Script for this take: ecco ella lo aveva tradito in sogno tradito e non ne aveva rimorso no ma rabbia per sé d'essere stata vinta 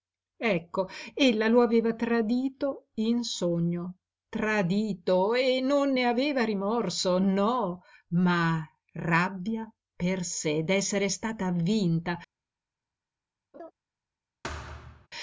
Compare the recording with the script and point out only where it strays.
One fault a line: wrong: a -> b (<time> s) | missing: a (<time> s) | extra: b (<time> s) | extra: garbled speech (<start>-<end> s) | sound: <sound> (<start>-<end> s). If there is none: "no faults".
sound: laugh (13.5-13.7 s)
sound: thud (14.4-15.1 s)